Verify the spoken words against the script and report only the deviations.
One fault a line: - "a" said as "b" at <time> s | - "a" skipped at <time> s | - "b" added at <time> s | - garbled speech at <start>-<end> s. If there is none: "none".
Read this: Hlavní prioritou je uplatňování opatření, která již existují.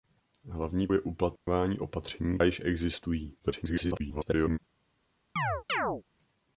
- "prioritou" skipped at 0.9 s
- "která" skipped at 2.4 s
- garbled speech at 3.4-4.6 s